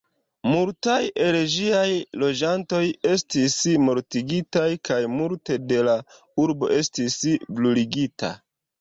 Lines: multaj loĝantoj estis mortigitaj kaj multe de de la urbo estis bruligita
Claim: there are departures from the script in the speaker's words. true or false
true